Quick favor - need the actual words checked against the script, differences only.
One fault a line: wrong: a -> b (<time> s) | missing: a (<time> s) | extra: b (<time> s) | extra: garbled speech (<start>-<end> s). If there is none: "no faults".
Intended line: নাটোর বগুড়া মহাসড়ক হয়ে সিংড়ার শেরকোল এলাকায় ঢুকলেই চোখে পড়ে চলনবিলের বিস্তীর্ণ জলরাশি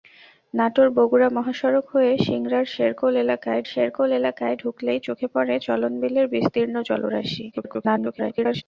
extra: শেরকোল এলাকায় (3.7 s)
extra: garbled speech (7.5-8.6 s)